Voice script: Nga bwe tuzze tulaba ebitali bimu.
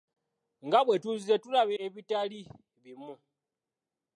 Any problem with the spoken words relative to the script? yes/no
no